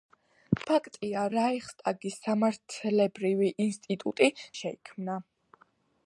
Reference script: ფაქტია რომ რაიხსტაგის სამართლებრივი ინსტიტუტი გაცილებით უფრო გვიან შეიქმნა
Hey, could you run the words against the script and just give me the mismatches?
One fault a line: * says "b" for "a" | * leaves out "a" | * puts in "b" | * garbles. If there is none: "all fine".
* leaves out "რომ"
* leaves out "გაცილებით უფრო გვიან"